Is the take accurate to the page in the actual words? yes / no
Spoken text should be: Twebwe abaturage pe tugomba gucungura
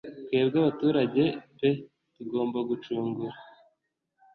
yes